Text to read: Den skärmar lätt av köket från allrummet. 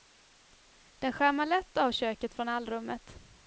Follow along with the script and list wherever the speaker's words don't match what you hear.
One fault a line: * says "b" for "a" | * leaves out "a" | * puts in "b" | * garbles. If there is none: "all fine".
all fine